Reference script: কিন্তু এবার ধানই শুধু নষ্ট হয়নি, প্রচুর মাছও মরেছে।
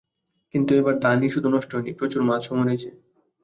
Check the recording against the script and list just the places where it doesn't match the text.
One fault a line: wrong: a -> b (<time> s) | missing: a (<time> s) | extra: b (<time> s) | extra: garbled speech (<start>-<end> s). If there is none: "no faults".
no faults